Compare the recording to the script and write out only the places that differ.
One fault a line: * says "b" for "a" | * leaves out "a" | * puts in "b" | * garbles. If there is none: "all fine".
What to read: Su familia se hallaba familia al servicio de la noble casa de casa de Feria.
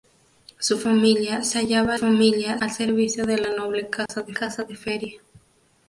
all fine